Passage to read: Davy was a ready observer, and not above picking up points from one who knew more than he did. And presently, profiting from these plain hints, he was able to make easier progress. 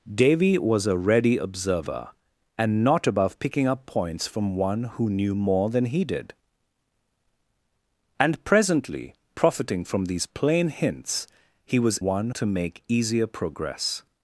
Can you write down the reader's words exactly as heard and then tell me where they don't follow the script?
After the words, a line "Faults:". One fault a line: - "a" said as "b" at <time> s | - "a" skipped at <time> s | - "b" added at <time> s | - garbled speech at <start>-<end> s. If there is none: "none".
Davy was a ready observer, and not above picking up points from one who knew more than he did. And presently, profiting from these plain hints, he was one to make easier progress.
Faults:
- "able" said as "one" at 12.0 s